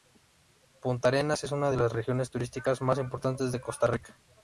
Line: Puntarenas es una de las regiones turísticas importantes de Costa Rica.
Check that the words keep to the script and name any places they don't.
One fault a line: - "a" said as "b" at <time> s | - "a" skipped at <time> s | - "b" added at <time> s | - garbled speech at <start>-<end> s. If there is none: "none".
- "más" added at 2.8 s